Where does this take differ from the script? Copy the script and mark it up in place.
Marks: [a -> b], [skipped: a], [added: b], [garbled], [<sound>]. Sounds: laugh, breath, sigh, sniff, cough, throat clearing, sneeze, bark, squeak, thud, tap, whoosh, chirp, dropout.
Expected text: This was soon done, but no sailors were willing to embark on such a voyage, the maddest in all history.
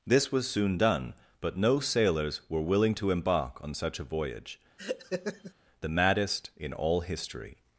This was soon done, but no sailors were willing to embark on such a voyage, [laugh] the maddest in all history.